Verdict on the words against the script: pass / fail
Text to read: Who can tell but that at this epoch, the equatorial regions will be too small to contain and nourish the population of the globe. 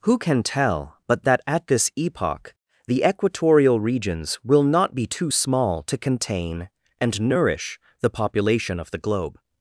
fail